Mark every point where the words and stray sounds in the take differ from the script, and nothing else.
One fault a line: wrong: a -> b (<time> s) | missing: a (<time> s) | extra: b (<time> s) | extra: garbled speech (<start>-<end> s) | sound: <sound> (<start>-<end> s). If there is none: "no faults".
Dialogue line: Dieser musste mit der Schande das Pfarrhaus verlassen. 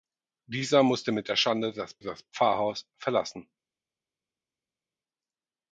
extra: das (2.0 s)